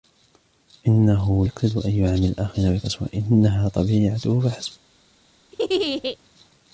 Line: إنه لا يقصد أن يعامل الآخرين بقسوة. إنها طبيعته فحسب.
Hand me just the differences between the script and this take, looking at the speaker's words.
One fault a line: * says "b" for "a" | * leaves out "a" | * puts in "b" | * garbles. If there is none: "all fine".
* leaves out "لا"